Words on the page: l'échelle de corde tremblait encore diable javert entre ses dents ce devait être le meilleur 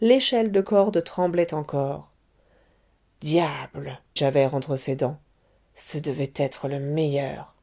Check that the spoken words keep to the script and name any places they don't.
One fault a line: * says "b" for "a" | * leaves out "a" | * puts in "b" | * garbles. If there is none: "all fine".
all fine